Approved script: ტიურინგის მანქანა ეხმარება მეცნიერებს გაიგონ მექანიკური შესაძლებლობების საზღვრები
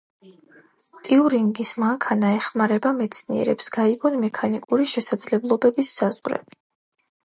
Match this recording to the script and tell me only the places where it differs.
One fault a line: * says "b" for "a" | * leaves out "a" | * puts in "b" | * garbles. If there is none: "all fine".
all fine